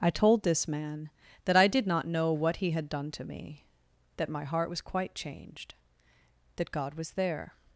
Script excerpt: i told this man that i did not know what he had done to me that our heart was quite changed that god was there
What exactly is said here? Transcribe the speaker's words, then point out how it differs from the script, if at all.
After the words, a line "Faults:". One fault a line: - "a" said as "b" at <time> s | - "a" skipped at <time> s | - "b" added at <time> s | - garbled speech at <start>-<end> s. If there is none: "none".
i told this man that i did not know what he had done to me that my heart was quite changed that god was there
Faults:
- "our" said as "my" at 4.3 s